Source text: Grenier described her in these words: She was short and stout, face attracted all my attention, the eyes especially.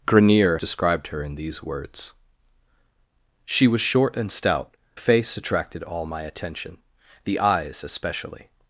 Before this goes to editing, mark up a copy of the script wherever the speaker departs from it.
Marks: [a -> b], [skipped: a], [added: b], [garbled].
Grenier described her in these words: She was short and stout, face attracted all my attention, the eyes especially.